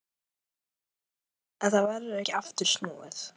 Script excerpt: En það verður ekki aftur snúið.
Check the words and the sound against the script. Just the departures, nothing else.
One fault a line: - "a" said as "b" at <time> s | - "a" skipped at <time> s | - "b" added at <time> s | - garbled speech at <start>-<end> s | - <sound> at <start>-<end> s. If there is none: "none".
none